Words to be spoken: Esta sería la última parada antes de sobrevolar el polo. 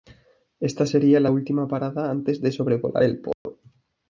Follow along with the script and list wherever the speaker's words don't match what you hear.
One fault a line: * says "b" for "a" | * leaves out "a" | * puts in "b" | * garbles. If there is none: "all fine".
all fine